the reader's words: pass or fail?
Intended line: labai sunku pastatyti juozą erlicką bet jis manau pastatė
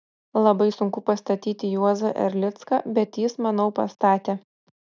pass